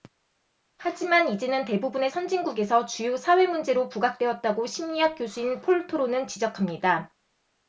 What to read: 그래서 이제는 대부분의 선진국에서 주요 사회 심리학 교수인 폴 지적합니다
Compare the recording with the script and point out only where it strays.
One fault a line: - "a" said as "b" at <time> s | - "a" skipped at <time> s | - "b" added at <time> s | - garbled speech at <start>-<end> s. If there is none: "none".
- "그래서" said as "하지만" at 0.8 s
- "문제로 부각되었다고" added at 3.5 s
- "토로는" added at 5.9 s